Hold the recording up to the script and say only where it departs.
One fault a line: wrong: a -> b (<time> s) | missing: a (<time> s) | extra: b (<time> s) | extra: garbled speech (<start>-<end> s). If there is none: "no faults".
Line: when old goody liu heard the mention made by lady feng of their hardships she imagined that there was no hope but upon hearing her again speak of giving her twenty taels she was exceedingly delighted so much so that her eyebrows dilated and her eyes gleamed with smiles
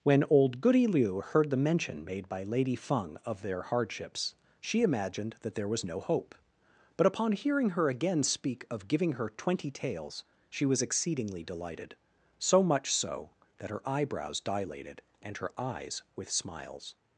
missing: gleamed (16.0 s)